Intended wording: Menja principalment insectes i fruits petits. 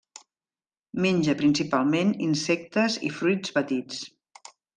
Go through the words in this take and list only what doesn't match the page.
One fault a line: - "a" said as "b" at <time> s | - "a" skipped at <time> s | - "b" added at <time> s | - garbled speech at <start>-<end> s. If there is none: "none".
none